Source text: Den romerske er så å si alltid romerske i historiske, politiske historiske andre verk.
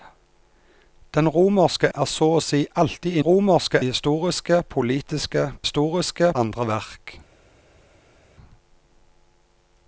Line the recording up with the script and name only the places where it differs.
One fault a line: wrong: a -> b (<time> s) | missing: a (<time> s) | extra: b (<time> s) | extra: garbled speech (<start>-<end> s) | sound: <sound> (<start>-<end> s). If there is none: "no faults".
no faults